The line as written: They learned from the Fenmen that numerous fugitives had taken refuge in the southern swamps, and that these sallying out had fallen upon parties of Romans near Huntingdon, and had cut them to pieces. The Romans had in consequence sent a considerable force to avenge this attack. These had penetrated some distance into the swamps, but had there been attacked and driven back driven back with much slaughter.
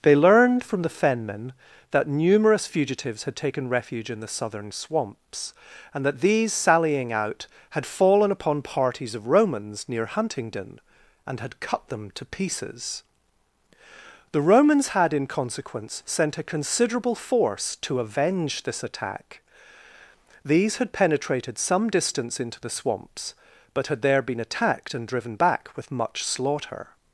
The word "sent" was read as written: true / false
true